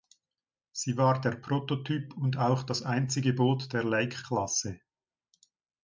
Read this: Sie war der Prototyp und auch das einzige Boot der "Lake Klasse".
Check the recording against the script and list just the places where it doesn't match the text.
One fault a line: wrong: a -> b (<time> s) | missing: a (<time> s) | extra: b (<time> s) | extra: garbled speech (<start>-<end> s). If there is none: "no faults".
no faults